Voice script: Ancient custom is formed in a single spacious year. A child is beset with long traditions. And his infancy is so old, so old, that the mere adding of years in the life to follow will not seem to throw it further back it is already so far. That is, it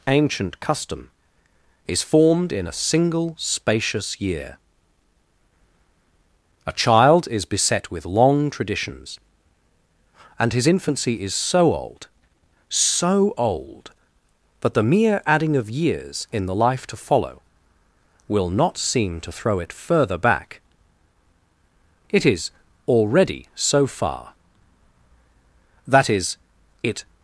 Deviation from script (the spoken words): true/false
false